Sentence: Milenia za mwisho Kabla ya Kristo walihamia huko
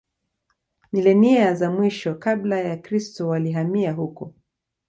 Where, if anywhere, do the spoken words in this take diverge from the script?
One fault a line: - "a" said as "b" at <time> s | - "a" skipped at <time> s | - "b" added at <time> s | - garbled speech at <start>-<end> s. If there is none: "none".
none